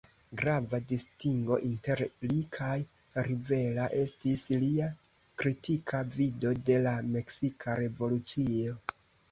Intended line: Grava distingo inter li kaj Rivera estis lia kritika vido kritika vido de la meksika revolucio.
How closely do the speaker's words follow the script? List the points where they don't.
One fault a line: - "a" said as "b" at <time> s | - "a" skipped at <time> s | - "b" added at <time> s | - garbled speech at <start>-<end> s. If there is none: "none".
- "kritika vido" skipped at 6.6 s